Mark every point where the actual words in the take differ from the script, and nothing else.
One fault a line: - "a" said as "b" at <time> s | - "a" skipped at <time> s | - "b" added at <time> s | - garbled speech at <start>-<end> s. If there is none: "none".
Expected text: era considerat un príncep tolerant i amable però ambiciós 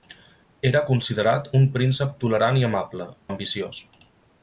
- "però" skipped at 3.1 s